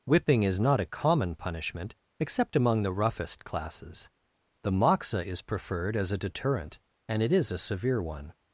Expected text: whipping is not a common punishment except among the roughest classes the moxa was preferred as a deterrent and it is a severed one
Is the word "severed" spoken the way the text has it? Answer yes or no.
no